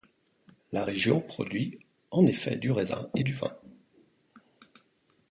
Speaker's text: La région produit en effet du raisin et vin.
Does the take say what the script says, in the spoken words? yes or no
no